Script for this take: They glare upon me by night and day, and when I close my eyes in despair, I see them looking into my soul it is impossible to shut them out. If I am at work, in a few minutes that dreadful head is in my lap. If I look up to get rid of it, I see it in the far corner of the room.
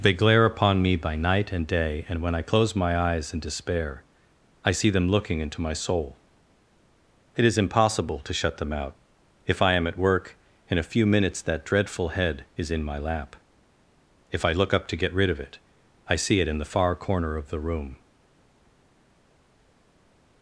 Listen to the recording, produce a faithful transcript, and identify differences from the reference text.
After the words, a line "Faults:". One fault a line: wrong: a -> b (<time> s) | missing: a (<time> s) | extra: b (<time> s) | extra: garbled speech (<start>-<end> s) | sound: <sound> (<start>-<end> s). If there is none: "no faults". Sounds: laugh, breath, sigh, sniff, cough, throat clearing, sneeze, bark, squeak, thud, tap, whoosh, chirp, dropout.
They glare upon me by night and day, and when I close my eyes in despair, I see them looking into my soul it is impossible to shut them out. If I am at work, in a few minutes that dreadful head is in my lap. If I look up to get rid of it, I see it in the far corner of the room.
Faults:
no faults